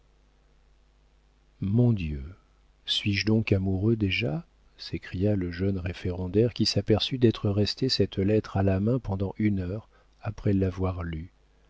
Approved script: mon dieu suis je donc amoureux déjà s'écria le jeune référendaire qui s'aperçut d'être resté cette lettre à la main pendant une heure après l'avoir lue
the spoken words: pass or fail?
pass